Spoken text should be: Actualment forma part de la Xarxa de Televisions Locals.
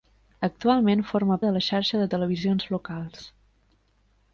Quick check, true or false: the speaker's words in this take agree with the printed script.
false